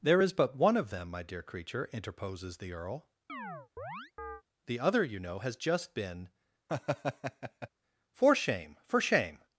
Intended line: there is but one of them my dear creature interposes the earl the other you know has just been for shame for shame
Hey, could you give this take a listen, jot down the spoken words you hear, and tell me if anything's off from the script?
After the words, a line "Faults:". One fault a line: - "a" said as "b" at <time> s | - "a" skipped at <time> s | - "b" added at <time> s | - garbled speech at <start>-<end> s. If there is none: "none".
there is but one of them my dear creature interposes the earl the other you know has just been for shame for shame
Faults:
none